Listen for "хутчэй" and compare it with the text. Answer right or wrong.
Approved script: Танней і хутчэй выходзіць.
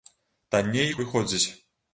wrong